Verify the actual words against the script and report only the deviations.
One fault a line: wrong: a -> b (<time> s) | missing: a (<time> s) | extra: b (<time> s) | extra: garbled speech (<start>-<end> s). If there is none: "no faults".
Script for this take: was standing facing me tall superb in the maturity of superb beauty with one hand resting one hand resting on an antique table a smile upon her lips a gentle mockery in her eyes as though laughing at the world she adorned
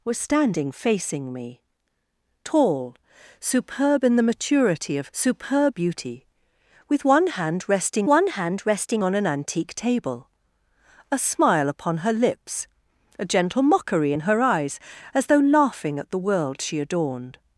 no faults